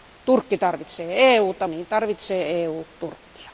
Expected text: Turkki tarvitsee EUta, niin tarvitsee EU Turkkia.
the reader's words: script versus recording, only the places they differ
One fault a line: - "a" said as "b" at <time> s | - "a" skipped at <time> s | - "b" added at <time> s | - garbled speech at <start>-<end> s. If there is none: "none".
none